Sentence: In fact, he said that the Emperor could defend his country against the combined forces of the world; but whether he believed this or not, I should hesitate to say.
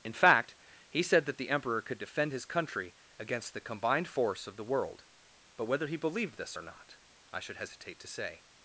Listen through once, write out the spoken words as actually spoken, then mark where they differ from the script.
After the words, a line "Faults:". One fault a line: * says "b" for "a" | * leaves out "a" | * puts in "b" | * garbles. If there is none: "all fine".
In fact, he said that the Emperor could defend his country against the combined force of the world; but whether he believed this or not, I should hesitate to say.
Faults:
* says "force" for "forces"